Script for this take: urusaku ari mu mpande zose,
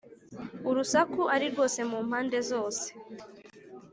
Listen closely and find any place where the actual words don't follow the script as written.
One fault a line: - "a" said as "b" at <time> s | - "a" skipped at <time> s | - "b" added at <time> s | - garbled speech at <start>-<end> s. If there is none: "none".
- "rwose" added at 1.5 s